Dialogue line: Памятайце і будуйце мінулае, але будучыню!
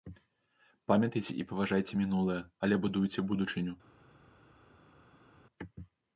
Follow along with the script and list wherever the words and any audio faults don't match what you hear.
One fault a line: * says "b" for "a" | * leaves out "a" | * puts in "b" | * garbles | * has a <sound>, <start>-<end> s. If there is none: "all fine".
* says "паважайце" for "будуйце"
* puts in "будуйце"